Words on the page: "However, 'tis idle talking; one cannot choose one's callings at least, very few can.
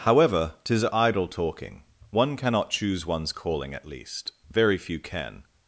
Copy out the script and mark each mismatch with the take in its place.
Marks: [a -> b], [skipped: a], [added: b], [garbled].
"However, 'tis idle talking; one cannot choose one's [callings -> calling] at least, very few can.